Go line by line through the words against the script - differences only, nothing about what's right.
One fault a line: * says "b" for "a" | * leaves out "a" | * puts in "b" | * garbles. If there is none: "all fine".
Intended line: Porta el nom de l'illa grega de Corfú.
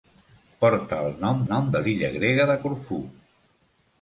* puts in "nom"